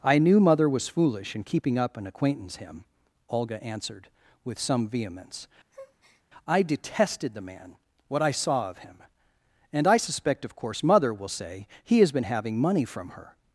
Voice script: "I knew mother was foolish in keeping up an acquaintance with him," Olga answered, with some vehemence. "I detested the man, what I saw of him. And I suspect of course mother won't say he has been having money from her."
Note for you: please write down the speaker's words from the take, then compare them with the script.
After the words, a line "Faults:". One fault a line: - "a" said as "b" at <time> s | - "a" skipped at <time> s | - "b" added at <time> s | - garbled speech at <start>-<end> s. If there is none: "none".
"I knew mother was foolish in keeping up an acquaintance him," Olga answered, with some vehemence. "I detested the man, what I saw of him. And I suspect of course mother will say he has been having money from her."
Faults:
- "with" skipped at 2.5 s
- "won't" said as "will" at 11.1 s